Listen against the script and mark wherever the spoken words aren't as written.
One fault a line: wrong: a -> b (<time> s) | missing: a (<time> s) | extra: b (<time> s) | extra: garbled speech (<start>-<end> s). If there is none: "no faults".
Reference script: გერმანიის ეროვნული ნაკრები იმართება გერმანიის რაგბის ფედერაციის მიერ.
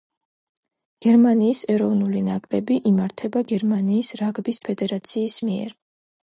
no faults